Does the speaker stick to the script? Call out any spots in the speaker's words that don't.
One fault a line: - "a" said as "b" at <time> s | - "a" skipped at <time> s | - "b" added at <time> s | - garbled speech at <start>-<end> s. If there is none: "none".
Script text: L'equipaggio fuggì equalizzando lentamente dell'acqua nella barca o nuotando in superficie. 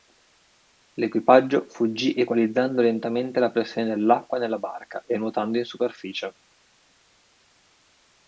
- "la pressione" added at 3.4 s
- "o" said as "e" at 5.0 s